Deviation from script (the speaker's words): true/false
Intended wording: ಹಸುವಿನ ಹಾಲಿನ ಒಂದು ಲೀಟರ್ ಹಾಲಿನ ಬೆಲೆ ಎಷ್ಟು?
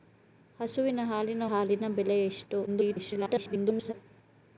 true